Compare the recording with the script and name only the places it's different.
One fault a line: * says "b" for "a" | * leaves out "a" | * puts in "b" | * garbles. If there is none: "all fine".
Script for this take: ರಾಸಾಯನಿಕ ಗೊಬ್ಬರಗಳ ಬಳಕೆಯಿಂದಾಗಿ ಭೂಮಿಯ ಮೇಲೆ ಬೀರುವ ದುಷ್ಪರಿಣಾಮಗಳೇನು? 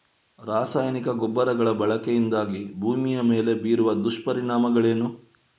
all fine